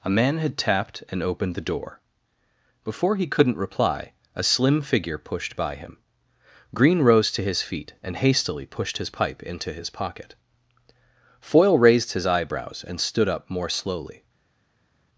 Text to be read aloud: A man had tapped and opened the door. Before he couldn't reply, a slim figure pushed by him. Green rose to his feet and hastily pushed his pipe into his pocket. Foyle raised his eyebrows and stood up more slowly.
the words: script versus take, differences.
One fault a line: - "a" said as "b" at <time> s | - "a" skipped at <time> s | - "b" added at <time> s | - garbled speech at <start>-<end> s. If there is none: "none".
none